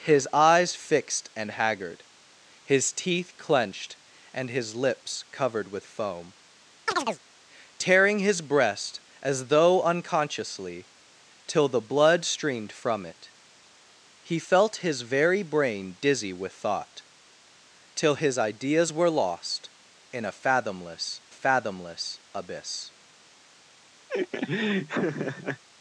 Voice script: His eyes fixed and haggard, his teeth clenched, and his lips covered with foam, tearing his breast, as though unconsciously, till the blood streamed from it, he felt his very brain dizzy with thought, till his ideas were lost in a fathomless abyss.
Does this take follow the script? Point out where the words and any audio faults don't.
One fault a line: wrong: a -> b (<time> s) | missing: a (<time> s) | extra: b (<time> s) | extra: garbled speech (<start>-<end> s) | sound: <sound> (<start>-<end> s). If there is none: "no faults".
sound: chirp (6.9-7.2 s)
extra: fathomless (21.3 s)
sound: laugh (24.1-25.6 s)